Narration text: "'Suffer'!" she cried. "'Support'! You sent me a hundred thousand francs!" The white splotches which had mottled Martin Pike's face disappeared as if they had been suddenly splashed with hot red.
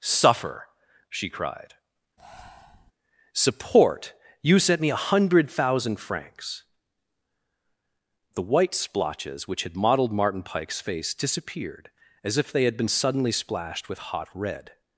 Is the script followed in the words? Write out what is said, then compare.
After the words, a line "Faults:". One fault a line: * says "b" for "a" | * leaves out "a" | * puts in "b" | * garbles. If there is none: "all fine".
"'Suffer'!" she cried. "'Support'! You sent me a hundred thousand francs!" The white splotches which had mottled Martin Pike's face disappeared as if they had been suddenly splashed with hot red.
Faults:
all fine